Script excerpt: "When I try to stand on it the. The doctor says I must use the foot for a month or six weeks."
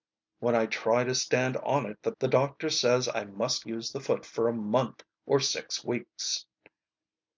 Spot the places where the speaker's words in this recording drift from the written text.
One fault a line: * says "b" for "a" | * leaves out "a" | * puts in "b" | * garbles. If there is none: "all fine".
all fine